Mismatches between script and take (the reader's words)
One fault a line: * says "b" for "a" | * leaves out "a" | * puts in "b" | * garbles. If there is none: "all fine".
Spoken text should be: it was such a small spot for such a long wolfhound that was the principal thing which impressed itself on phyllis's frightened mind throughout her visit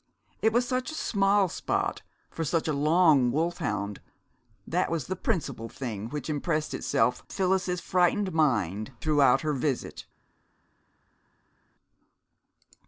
* leaves out "on"